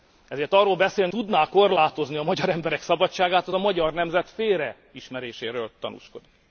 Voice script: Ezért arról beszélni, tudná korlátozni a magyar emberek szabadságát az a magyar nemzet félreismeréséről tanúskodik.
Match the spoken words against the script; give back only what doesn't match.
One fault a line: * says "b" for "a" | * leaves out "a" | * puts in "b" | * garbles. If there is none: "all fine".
all fine